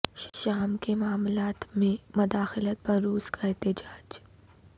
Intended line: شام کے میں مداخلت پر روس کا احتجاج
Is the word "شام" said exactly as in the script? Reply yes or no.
yes